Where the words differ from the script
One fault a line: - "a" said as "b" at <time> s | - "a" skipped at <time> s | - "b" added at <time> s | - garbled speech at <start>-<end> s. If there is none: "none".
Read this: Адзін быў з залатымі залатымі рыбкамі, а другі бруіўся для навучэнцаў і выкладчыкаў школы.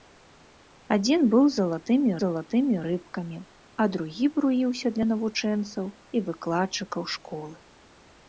none